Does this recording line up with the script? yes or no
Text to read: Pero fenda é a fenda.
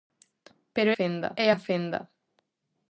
yes